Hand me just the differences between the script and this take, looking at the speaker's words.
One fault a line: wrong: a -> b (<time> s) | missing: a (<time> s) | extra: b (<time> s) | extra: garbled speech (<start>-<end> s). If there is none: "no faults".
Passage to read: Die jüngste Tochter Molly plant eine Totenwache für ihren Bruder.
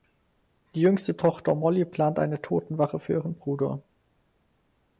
no faults